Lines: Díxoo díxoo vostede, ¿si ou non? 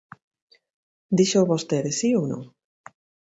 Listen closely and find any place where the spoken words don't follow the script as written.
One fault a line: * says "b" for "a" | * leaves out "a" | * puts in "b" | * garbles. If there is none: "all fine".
* leaves out "díxoo"